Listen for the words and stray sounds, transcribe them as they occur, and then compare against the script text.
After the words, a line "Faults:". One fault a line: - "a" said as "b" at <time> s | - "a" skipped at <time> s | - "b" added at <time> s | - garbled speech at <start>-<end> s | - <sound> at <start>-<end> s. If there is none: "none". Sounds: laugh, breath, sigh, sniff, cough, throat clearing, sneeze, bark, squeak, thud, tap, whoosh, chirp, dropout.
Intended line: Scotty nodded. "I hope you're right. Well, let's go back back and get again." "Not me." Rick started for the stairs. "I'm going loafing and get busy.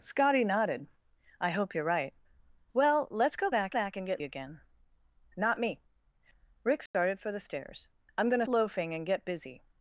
Scotty nodded. "I hope you're right. Well, let's go back back and get again." "Not me." Rick started for the stairs. "I'm going loafing and get busy.
Faults:
- dropout at 6.9-6.9 s